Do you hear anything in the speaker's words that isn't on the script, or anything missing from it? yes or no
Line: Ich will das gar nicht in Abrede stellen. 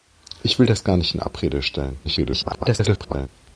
yes